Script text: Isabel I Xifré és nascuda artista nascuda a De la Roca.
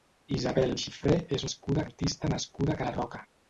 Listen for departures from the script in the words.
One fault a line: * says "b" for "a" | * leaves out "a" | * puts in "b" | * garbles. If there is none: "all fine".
all fine